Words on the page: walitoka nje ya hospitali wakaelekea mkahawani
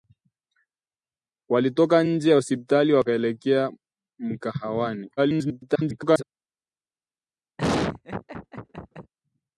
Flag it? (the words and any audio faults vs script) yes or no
yes